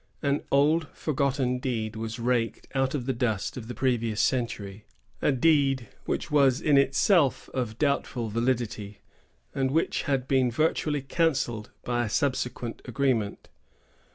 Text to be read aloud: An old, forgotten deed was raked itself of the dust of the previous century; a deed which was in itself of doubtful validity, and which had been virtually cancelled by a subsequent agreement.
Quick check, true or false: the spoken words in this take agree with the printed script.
false